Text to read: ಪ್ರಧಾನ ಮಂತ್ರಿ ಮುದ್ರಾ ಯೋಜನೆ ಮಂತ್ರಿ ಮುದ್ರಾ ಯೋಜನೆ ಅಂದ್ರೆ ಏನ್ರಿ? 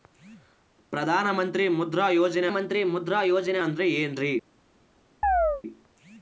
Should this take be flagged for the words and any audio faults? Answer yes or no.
yes